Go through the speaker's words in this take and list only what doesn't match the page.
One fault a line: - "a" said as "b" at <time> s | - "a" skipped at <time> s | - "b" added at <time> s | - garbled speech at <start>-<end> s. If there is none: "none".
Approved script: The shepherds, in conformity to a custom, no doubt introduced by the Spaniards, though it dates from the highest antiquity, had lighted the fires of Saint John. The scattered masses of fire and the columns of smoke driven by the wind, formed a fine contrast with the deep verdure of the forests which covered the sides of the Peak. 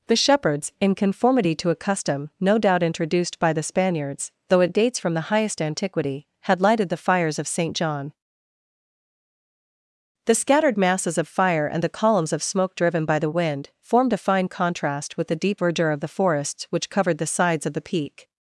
none